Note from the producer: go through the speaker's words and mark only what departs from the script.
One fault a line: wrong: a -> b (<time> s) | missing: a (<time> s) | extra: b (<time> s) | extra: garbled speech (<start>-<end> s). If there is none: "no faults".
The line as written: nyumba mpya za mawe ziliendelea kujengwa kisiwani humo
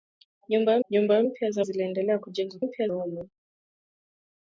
extra: nyumba (0.9 s)
missing: mawe (1.6 s)
wrong: kisiwani -> mpya (2.6 s)